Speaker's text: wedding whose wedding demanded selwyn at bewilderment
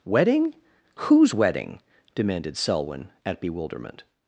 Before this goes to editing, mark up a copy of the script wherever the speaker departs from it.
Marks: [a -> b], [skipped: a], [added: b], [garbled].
wedding whose wedding demanded selwyn at bewilderment